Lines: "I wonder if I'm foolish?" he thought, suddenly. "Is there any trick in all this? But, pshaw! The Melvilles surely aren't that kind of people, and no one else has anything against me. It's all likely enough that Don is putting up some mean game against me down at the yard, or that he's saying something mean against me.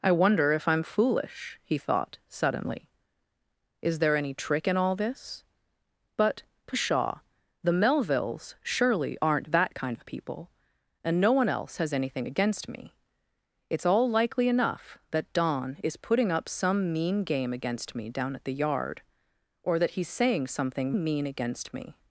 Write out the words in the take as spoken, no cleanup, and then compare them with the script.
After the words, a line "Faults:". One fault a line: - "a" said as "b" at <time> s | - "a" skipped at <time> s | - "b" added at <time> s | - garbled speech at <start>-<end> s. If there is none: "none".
"I wonder if I'm foolish?" he thought, suddenly. "Is there any trick in all this? But, pshaw! The Melvilles surely aren't that kind of people, and no one else has anything against me. It's all likely enough that Don is putting up some mean game against me down at the yard, or that he's saying something mean against me.
Faults:
none